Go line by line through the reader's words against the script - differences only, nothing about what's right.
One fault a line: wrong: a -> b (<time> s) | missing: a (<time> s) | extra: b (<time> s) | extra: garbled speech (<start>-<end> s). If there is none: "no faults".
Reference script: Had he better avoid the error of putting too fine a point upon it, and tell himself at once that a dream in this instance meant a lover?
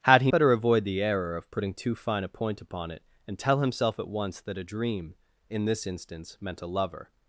no faults